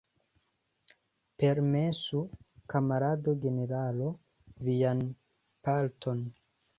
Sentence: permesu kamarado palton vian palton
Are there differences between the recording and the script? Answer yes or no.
yes